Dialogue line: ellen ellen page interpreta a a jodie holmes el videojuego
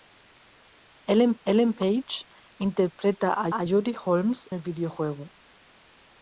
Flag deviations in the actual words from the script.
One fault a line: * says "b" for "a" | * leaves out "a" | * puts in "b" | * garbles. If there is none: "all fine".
all fine